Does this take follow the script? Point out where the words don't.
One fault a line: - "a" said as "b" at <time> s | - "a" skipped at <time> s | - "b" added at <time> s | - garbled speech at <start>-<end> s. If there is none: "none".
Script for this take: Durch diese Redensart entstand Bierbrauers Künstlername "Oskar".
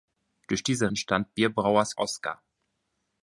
- "Redensart" skipped at 0.9 s
- "Künstlername" skipped at 2.0 s